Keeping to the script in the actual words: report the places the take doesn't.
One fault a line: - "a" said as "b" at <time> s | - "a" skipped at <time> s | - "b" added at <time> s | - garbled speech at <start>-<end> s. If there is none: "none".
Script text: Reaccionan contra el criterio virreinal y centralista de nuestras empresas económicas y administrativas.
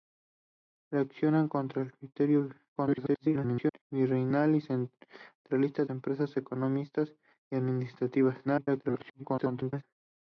- garbled speech at 2.8-3.8 s
- "de nuestras" skipped at 5.8 s
- garbled speech at 8.4-9.8 s